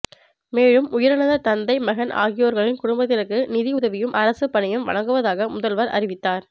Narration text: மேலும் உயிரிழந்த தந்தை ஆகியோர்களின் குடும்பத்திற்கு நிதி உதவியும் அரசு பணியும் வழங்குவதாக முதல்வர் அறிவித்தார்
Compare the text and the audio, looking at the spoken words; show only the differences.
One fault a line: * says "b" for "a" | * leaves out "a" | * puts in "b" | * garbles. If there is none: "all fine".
* puts in "மகன்"